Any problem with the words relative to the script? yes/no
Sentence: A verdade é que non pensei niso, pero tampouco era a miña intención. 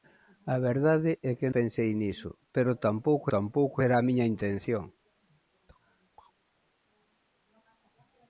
yes